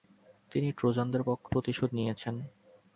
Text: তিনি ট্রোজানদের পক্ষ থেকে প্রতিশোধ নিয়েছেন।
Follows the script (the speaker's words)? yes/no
no